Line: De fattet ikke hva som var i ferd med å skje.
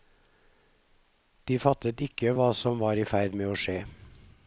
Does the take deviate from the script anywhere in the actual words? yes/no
no